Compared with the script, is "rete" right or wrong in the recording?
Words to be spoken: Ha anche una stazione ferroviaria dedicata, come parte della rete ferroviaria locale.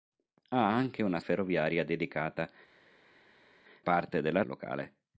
wrong